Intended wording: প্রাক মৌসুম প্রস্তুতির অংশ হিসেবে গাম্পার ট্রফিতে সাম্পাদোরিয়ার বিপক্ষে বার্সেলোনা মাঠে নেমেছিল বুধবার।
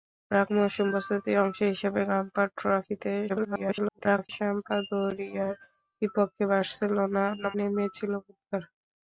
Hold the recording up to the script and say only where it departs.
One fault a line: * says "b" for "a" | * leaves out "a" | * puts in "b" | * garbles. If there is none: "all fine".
* garbles
* leaves out "মাঠে"